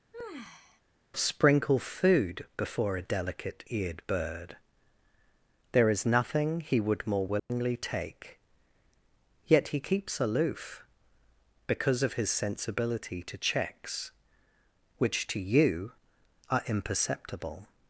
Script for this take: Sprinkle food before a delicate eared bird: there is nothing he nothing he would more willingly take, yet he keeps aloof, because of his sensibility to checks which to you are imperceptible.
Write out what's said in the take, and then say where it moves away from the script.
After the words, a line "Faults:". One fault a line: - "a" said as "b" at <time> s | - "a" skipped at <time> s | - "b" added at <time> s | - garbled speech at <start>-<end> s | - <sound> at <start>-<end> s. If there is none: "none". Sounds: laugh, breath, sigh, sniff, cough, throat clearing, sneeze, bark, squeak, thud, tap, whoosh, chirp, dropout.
Sprinkle food before a delicate eared bird: there is nothing he would more willingly take, yet he keeps aloof, because of his sensibility to checks which to you are imperceptible.
Faults:
- sigh at 0.1-0.8 s
- "nothing he" skipped at 6.8 s
- dropout at 7.4-7.5 s